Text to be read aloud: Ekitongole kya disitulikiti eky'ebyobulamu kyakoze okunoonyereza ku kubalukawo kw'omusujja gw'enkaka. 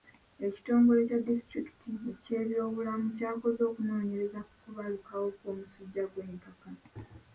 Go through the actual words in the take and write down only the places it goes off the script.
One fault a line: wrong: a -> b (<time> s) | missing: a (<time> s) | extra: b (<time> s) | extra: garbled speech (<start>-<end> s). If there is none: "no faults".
no faults